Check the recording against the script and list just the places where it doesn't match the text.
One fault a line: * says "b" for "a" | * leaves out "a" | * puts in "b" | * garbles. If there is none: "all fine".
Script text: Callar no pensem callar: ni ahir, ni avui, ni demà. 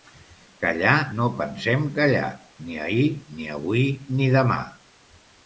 all fine